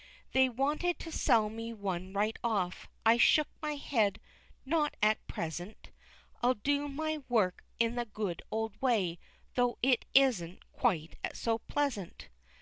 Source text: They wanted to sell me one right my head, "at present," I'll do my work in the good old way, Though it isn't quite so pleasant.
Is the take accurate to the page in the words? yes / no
no